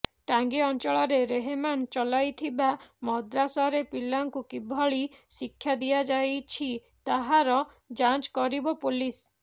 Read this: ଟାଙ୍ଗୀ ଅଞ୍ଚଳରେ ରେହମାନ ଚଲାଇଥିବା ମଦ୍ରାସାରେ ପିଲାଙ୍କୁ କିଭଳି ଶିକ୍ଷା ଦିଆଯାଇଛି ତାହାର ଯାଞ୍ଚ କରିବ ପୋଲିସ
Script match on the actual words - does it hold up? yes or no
yes